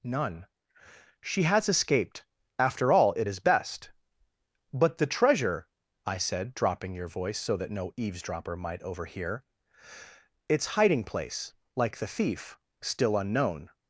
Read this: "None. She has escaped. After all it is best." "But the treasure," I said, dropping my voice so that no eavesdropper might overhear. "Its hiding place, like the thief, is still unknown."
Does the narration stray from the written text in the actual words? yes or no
yes